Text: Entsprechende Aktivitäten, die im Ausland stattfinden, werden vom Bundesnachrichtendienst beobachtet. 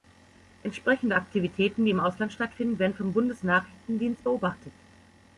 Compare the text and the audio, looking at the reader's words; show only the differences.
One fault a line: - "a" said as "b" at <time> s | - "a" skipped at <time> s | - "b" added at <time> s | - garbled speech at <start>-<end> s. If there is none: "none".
none